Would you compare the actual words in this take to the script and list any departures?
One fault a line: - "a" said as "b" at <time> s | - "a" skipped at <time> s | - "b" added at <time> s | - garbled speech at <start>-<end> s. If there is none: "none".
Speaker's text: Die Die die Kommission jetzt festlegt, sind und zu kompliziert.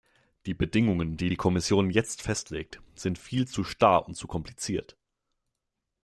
- "Bedingungen" added at 0.6 s
- "viel zu starr" added at 3.2 s